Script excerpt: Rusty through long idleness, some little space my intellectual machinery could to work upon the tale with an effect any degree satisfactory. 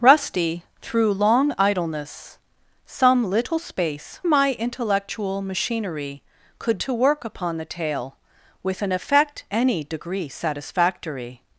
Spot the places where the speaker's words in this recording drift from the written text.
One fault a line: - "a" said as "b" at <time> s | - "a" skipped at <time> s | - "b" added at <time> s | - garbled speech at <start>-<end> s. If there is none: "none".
none